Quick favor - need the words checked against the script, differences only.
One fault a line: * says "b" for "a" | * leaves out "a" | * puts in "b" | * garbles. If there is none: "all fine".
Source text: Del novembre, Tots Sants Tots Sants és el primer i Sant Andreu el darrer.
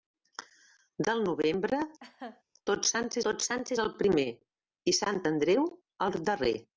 all fine